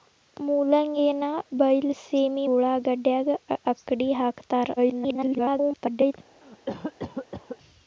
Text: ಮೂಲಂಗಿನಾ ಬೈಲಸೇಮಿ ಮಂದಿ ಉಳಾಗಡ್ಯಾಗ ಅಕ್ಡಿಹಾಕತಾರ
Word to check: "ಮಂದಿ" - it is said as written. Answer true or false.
false